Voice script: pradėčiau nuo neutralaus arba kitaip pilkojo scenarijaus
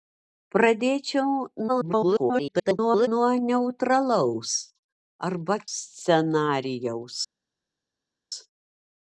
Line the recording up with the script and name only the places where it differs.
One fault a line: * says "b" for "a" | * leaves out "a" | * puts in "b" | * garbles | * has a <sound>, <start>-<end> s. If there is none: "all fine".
* garbles
* leaves out "kitaip pilkojo"